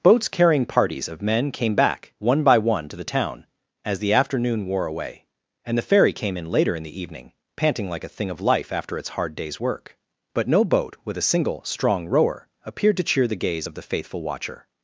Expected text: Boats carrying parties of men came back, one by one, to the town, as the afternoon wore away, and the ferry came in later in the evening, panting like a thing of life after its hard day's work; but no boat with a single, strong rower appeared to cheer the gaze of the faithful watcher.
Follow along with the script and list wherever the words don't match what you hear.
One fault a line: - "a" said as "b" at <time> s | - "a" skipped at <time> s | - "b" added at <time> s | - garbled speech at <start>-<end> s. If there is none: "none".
none